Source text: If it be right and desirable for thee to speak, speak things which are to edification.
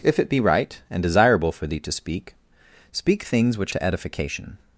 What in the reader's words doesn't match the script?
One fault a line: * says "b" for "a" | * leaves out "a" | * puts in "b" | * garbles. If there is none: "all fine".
* leaves out "are"